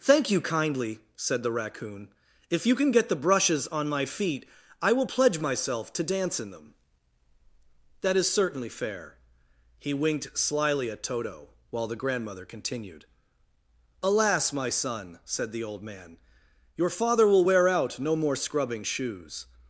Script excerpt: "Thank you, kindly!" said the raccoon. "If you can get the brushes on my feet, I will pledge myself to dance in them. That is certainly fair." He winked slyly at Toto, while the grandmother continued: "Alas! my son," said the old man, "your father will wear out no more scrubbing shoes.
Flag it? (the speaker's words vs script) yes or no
no